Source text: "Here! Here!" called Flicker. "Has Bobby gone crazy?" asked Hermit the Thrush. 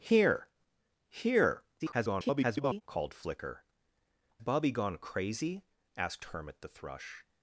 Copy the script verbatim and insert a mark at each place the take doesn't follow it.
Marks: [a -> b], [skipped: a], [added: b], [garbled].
"Here! Here!" [garbled] called Flicker. [skipped: "Has] Bobby gone crazy?" asked Hermit the Thrush.